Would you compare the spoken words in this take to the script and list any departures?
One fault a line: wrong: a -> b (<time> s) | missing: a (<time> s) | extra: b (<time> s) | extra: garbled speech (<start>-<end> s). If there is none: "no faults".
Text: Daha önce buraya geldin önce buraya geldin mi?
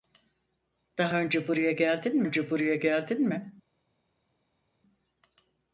no faults